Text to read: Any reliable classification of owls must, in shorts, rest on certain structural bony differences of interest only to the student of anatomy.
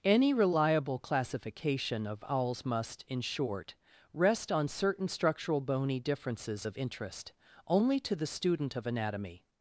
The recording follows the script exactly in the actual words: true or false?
false